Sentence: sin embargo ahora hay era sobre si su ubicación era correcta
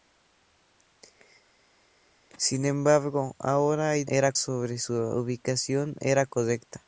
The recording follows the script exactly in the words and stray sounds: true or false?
true